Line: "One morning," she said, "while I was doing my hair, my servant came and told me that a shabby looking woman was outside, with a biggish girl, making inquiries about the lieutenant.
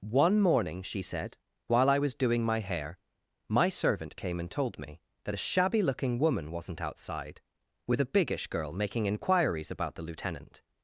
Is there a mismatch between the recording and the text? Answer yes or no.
yes